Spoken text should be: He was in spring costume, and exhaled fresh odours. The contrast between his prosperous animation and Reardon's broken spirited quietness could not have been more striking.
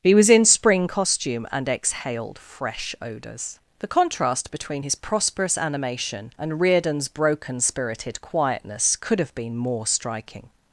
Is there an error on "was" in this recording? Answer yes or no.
no